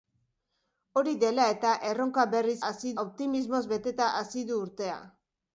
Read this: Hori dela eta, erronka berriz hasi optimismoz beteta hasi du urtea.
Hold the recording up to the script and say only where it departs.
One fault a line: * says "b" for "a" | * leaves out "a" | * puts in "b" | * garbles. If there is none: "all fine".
all fine